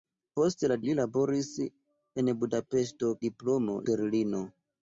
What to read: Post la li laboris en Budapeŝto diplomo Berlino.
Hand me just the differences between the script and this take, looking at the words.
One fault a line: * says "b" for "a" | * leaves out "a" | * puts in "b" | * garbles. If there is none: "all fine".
all fine